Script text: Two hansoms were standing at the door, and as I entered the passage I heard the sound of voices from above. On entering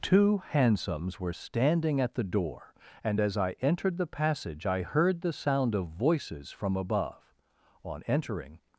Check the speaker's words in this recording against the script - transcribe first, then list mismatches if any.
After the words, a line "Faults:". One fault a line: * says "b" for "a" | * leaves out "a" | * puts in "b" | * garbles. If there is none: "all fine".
Two hansoms were standing at the door, and as I entered the passage I heard the sound of voices from above. On entering
Faults:
all fine